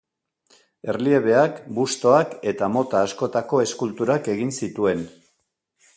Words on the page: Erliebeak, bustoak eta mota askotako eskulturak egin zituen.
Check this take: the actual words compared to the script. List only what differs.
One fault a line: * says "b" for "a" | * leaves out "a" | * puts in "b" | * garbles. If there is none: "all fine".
all fine